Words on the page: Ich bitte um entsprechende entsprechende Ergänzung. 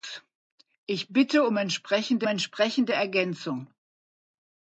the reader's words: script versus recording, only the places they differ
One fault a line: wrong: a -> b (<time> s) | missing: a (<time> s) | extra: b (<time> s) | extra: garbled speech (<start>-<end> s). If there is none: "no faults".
no faults